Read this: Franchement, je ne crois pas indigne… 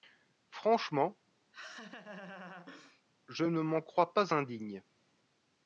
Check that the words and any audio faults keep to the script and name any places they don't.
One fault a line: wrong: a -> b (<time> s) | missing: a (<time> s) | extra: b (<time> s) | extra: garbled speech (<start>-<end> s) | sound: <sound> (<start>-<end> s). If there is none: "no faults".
sound: laugh (1.5-3.0 s)
extra: m'en (3.6 s)